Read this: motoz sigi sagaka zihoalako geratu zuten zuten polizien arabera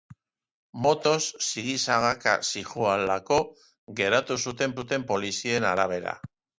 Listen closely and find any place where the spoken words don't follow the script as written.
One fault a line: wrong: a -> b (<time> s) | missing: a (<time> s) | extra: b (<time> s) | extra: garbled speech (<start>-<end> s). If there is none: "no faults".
no faults